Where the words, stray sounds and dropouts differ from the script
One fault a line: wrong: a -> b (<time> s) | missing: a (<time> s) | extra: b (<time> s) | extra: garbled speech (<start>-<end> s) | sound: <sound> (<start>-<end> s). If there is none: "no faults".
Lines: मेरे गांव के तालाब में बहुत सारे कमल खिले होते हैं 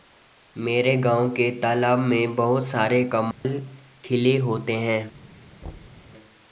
sound: dropout (3.3-3.4 s)
sound: thud (5.6-6.1 s)